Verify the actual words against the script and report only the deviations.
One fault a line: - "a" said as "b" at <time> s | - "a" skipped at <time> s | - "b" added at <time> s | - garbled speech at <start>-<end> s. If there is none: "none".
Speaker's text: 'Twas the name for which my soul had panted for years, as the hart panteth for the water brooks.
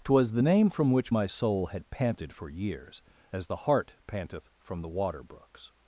- "for" said as "from" at 0.7 s
- "for" said as "from" at 4.6 s